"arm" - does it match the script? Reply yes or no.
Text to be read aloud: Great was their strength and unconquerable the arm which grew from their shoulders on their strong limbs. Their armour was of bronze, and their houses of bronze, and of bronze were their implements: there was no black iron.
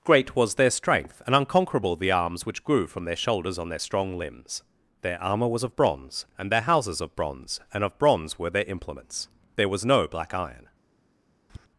no